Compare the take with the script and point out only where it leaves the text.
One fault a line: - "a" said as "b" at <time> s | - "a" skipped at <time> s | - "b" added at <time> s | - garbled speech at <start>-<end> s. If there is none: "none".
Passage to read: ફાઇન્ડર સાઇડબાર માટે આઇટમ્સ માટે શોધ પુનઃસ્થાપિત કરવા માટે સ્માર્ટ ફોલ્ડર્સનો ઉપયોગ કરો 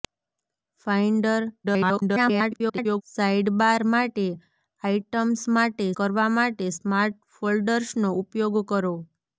- garbled speech at 1.6-3.0 s
- "શોધ પુનઃસ્થાપિત" skipped at 5.8 s